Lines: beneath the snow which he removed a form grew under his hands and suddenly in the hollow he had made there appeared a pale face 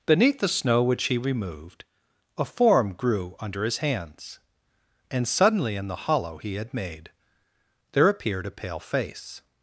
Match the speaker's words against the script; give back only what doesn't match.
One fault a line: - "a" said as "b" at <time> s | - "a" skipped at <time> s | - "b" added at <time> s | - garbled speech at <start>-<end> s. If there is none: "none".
none